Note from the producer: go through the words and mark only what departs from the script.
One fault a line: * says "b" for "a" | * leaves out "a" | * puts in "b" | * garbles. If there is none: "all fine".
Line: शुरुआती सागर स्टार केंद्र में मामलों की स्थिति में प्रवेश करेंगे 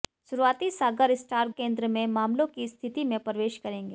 all fine